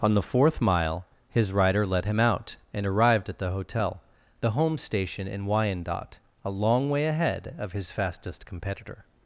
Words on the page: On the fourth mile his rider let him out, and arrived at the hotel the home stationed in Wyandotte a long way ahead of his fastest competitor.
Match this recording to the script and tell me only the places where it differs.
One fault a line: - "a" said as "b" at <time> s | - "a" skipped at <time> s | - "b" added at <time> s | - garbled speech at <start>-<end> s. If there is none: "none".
- "stationed" said as "station" at 4.8 s